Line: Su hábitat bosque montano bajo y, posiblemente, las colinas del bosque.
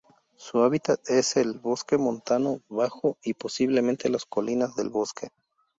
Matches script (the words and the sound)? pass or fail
fail